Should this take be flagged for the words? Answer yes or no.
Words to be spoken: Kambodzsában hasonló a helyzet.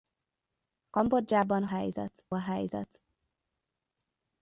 yes